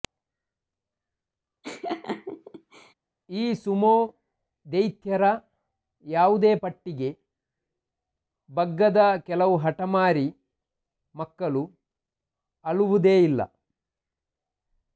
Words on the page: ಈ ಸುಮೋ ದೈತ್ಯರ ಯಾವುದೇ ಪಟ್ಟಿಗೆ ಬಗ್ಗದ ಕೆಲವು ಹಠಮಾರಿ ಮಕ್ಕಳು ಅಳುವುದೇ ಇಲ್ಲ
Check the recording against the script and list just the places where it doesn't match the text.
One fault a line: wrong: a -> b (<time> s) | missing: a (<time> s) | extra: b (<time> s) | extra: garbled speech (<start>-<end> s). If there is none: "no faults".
no faults